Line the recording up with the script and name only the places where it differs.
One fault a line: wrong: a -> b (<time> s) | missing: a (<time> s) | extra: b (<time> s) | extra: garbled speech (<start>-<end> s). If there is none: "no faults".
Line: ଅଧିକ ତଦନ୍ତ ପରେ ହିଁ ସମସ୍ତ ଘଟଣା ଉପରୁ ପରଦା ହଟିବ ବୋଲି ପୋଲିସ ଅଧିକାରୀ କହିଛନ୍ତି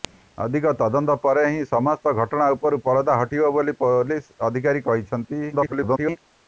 extra: garbled speech (5.5-6.2 s)